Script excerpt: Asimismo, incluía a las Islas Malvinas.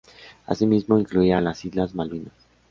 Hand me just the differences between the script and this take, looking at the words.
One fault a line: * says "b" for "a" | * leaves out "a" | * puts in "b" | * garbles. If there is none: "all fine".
all fine